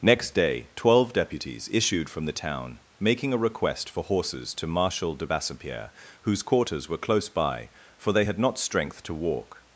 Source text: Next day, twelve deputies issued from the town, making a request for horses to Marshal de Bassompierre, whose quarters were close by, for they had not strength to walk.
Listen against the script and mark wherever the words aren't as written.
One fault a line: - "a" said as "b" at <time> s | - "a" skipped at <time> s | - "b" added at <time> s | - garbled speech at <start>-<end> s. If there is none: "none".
none